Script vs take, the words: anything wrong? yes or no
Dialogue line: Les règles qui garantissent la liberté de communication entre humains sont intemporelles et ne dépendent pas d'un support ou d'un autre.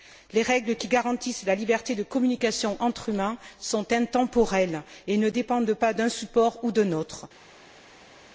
no